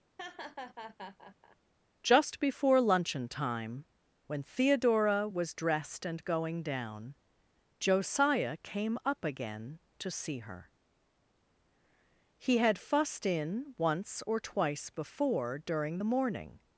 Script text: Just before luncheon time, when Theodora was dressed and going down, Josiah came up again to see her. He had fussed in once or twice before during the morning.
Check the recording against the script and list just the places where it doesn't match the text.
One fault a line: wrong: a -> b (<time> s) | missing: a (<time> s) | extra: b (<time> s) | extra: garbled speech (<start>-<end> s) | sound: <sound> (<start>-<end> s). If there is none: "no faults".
sound: laugh (0.2-1.6 s)